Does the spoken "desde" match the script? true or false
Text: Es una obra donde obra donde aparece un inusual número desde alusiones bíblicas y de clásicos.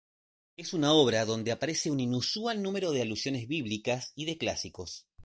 false